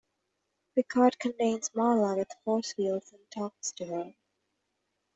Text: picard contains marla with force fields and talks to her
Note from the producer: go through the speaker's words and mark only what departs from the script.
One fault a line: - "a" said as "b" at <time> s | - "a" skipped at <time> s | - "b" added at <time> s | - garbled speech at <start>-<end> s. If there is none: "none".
none